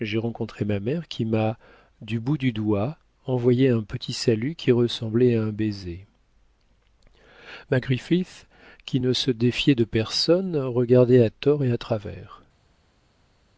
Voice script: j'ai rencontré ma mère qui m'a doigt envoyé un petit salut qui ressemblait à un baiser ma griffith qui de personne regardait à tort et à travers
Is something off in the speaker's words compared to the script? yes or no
yes